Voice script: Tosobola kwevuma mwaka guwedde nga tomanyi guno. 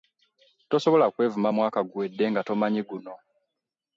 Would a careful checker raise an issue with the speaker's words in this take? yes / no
no